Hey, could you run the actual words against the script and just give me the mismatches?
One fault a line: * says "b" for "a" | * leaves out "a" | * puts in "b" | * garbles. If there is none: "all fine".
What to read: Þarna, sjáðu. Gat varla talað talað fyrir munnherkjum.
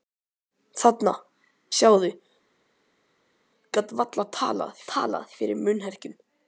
all fine